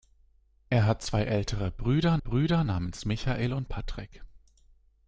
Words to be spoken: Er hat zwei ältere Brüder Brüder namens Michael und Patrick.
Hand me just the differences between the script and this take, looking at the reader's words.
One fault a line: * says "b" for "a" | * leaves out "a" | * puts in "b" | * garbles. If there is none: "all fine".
all fine